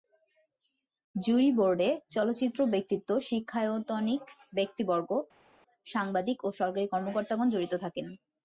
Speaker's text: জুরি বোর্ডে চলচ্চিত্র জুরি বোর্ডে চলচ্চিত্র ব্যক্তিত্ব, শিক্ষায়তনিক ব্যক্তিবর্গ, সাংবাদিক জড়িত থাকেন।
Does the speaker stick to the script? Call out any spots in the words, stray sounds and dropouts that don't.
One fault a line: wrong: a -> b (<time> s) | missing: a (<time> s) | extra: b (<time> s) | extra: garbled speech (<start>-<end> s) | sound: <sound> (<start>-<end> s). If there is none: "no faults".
missing: জুরি বোর্ডে চলচ্চিত্র (2.6 s)
extra: ও সরকারি কর্মকর্তাগণ (6.4 s)